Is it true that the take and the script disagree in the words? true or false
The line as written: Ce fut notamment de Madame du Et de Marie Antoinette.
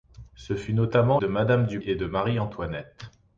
false